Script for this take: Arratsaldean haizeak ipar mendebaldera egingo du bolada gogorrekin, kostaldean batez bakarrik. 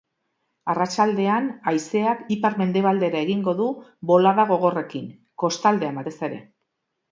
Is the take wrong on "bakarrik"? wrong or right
wrong